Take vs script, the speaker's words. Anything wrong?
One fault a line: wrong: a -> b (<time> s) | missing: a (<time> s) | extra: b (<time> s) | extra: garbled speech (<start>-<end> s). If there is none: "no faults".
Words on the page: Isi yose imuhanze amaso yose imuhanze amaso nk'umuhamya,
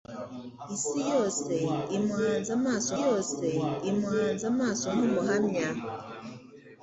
no faults